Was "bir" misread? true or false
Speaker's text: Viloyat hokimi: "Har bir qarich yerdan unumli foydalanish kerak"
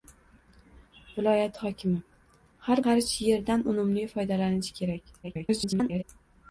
true